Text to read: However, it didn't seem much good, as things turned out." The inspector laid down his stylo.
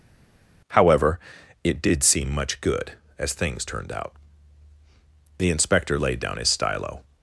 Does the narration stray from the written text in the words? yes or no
yes